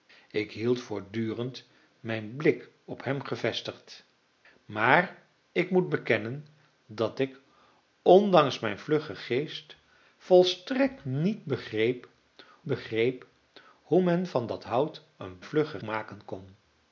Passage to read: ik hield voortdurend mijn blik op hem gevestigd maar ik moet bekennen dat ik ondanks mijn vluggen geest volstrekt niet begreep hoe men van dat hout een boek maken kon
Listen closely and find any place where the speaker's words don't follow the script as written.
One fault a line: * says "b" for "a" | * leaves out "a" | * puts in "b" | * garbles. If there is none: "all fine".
* puts in "begreep"
* says "vluggen" for "boek"